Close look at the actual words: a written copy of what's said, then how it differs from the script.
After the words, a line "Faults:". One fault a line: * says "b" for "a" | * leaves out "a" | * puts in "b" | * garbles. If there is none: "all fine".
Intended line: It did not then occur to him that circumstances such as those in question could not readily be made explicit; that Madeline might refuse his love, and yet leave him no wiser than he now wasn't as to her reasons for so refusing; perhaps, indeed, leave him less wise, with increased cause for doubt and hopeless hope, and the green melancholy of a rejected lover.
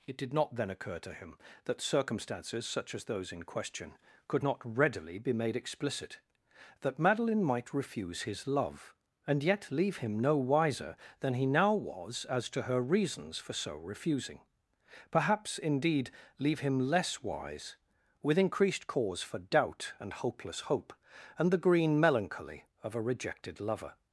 It did not then occur to him that circumstances such as those in question could not readily be made explicit; that Madeline might refuse his love, and yet leave him no wiser than he now was as to her reasons for so refusing; perhaps, indeed, leave him less wise, with increased cause for doubt and hopeless hope, and the green melancholy of a rejected lover.
Faults:
* says "was" for "wasn't"